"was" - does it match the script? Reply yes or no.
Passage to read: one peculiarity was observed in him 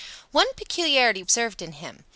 no